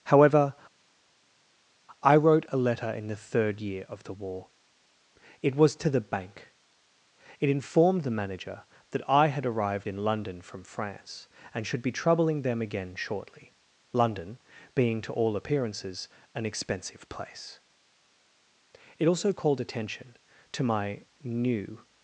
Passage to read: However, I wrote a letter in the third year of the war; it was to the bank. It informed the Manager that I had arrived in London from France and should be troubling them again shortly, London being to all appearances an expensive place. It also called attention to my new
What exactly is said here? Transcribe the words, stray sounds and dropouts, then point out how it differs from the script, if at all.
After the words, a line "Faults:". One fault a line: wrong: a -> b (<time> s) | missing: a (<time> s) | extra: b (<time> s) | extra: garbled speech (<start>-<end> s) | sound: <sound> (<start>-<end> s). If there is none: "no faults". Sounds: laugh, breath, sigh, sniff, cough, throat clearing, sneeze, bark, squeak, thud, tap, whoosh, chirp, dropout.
However, I wrote a letter in the third year of the war; it was to the bank. It informed the Manager that I had arrived in London from France and should be troubling them again shortly, London being to all appearances an expensive place. It also called attention to my new
Faults:
no faults